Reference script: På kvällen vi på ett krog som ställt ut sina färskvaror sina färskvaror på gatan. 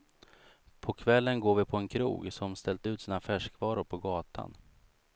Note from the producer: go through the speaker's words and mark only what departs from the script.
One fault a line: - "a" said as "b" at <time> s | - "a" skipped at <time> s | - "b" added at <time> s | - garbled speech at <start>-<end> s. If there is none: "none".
- "går" added at 1.4 s
- "ett" said as "en" at 1.8 s
- "sina färskvaror" skipped at 3.8 s